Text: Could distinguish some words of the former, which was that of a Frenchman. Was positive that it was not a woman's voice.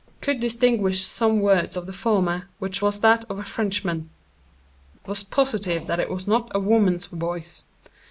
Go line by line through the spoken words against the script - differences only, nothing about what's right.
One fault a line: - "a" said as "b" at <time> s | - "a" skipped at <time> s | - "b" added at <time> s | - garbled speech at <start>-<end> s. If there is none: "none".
none